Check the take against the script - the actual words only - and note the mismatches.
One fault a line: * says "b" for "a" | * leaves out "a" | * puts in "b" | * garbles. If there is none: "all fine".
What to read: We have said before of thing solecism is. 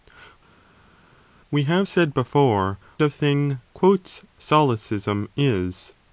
all fine